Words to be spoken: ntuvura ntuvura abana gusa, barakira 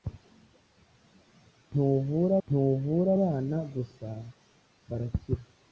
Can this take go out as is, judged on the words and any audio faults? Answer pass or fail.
pass